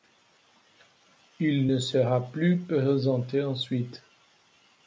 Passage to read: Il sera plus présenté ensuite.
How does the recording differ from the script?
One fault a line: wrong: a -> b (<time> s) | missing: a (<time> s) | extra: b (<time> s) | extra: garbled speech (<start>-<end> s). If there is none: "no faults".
extra: ne (1.7 s)